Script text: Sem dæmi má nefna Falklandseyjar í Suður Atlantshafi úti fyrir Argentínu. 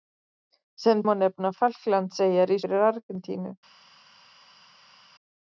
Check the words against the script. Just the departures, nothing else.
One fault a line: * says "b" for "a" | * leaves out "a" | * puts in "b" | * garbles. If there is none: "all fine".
* leaves out "dæmi"
* leaves out "Suður Atlantshafi úti"